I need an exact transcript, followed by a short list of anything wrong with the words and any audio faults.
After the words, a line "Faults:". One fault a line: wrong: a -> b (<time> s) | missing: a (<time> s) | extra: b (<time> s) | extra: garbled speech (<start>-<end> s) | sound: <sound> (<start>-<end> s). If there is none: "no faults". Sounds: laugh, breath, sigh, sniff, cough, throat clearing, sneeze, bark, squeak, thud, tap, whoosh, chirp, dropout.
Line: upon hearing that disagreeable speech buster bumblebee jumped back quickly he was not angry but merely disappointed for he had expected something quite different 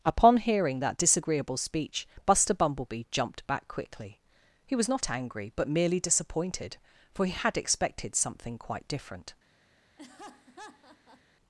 upon hearing that disagreeable speech buster bumblebee jumped back quickly he was not angry but merely disappointed for he had expected something quite different
Faults:
sound: laugh (10.0-11.2 s)